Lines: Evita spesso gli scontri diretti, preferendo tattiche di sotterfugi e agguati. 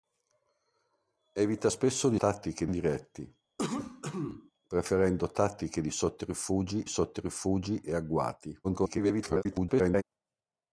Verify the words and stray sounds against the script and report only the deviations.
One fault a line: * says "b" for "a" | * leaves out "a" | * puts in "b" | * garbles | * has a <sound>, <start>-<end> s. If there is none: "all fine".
* says "tattiche" for "scontri"
* has a cough, 3.6-4.5 s
* puts in "sotterfugi"
* garbles